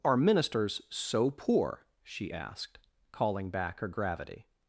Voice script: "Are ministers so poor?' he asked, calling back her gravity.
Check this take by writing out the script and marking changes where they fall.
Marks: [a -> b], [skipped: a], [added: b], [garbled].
"Are ministers so poor?' [he -> she] asked, calling back her gravity.